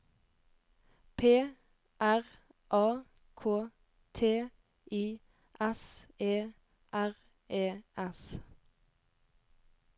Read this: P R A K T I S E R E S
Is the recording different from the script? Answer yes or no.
no